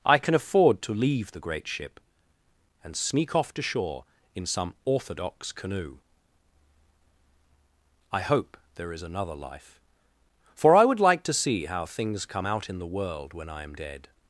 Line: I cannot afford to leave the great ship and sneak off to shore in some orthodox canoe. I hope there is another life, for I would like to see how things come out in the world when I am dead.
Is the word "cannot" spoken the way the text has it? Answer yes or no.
no